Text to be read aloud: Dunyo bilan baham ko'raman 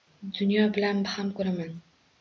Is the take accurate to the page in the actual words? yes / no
yes